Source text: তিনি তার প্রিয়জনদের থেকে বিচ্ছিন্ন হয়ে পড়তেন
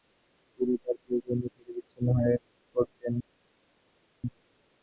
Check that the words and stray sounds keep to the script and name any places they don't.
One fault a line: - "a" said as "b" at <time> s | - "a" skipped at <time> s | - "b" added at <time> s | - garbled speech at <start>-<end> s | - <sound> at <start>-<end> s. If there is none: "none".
none